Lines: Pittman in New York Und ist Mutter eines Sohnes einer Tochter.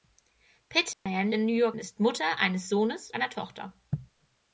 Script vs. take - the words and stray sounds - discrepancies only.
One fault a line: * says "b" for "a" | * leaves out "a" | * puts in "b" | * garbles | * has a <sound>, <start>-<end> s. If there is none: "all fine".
* has a dropout, 0.9-1.1 s